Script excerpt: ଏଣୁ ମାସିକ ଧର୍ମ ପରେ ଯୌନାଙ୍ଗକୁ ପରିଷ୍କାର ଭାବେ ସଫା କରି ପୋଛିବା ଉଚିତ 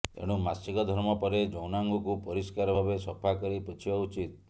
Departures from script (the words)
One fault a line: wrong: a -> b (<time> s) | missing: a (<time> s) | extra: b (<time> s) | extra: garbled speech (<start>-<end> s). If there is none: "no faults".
no faults